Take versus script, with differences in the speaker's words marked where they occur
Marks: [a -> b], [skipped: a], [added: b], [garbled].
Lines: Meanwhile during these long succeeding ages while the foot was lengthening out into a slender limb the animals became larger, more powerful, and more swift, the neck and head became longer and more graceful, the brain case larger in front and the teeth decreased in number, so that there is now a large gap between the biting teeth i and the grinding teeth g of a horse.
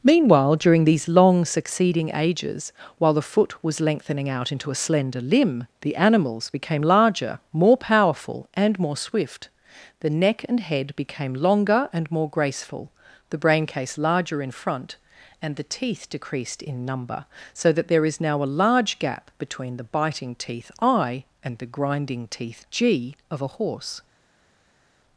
Meanwhile during these long succeeding ages while the foot was lengthening out into a slender limb the animals became larger, more powerful, and more swift, the neck and head became longer and more graceful, the brain case larger in front and the teeth decreased in number, so that there is now a large gap between the biting teeth i and the grinding teeth g of a horse.